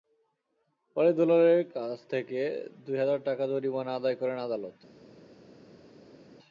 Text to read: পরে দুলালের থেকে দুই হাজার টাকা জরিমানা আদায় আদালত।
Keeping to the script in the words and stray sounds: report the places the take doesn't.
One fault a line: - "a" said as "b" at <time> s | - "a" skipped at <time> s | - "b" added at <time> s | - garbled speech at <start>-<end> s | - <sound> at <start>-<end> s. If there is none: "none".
- "কাছ" added at 1.8 s
- "করেন" added at 4.2 s